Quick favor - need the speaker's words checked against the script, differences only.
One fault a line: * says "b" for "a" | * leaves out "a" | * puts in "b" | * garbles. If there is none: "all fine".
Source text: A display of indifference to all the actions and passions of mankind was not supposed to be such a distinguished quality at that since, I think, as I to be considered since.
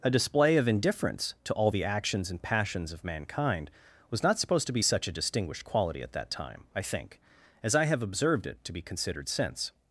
* says "time" for "since"
* puts in "have observed it"